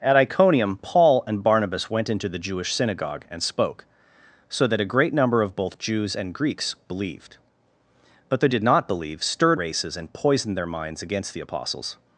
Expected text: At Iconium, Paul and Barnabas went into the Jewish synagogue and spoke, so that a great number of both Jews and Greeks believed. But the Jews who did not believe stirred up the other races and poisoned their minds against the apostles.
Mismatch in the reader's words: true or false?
true